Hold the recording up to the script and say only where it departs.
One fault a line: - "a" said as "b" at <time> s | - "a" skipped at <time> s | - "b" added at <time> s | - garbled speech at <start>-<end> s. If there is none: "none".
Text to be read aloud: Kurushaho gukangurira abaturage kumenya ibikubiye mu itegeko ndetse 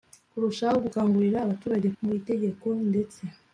- "kumenya ibikubiye" skipped at 1.9 s